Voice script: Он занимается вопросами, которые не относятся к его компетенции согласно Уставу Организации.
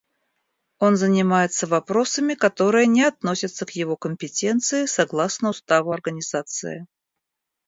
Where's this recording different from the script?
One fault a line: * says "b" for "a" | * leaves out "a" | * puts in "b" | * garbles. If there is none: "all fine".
all fine